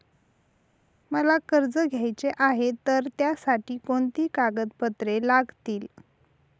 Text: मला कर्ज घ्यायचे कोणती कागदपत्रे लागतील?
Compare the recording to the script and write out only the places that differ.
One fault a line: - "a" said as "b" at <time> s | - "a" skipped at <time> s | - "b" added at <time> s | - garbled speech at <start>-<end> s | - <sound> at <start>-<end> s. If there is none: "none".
- "आहे तर त्यासाठी" added at 2.4 s